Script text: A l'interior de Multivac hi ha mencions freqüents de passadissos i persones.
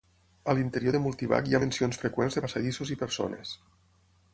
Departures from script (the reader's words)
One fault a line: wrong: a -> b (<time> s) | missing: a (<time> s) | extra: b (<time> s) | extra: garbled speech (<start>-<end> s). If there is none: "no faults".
no faults